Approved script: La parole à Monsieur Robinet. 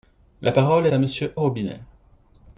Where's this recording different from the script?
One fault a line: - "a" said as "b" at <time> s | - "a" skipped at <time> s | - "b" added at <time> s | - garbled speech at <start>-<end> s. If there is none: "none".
none